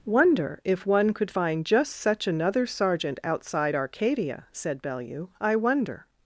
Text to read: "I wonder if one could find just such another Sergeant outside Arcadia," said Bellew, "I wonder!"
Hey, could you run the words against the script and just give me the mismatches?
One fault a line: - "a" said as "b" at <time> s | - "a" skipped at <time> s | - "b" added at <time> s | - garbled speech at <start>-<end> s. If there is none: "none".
- "I" skipped at 0.1 s